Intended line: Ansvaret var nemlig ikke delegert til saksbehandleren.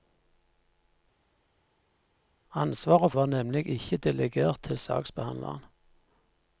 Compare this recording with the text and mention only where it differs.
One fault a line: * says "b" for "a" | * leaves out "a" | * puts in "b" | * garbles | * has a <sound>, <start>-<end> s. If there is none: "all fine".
all fine